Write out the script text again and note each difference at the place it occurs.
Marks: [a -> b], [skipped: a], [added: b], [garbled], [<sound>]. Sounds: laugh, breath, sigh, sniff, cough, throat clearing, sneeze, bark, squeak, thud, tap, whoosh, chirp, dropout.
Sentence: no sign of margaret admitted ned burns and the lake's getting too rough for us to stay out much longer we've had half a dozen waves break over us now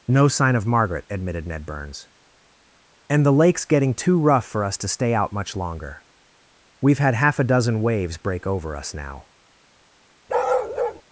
no sign of margaret admitted ned burns and the lake's getting too rough for us to stay out much longer we've had half a dozen waves break over us now [bark]